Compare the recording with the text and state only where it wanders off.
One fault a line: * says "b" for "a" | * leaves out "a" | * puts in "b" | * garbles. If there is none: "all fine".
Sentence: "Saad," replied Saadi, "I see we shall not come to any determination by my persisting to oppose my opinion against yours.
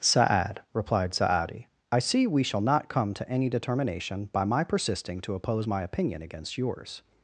all fine